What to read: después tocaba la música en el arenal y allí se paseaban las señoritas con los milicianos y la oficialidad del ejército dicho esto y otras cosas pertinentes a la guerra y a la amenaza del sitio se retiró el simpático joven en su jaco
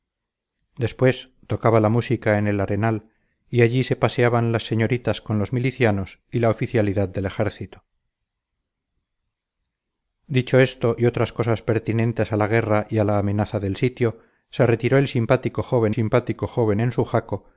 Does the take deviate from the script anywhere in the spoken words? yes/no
yes